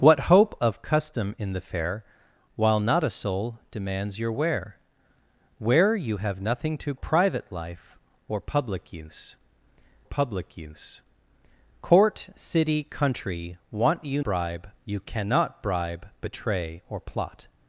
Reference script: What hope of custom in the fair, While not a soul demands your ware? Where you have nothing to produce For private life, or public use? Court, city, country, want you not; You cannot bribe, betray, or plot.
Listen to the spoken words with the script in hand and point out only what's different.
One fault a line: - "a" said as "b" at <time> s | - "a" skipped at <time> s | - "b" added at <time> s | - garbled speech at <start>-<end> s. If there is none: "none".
- "produce For" skipped at 7.0 s
- "public use" added at 10.0 s
- "not" said as "bribe" at 14.2 s